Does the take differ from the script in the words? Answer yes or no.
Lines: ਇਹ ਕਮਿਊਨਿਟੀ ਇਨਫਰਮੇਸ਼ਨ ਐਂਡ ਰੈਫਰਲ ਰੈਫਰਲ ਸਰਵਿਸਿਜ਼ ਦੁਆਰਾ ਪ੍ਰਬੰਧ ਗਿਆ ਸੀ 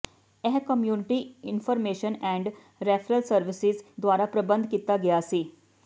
yes